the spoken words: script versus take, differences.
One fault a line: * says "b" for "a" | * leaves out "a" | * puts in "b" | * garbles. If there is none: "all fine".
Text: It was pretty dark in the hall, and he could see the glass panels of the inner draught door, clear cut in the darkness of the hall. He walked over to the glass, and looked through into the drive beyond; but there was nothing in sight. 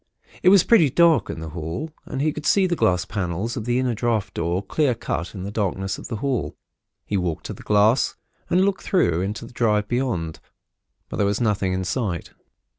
* leaves out "over"